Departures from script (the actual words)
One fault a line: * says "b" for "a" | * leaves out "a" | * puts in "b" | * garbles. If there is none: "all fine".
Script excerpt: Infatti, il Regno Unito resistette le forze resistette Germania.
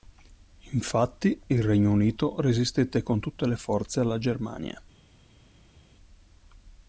* puts in "con tutte"
* says "alla" for "resistette"